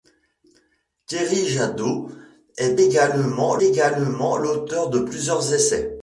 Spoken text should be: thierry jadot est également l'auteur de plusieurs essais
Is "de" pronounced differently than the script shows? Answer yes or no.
no